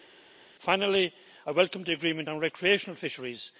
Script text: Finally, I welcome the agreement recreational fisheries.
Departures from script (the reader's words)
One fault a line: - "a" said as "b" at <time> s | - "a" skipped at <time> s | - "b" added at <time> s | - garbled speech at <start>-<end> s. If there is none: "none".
- "on" added at 2.3 s